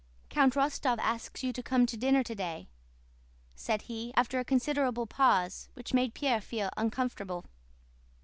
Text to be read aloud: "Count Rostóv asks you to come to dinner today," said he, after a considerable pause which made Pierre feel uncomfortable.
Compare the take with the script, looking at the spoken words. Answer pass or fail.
pass